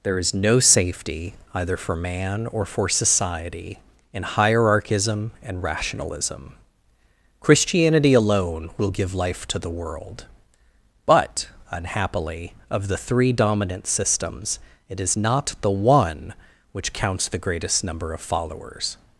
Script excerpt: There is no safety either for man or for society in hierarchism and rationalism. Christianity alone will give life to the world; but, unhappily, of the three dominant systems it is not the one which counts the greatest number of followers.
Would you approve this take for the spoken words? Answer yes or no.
yes